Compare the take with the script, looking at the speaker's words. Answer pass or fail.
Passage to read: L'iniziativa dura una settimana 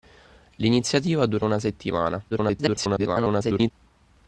fail